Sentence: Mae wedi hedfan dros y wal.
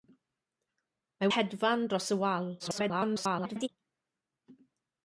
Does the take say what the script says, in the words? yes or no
no